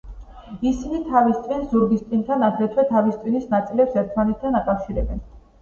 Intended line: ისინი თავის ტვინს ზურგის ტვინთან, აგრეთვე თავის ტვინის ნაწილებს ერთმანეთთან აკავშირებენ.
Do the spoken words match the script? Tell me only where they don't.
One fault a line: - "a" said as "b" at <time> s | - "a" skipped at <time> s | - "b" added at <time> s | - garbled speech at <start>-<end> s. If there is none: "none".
none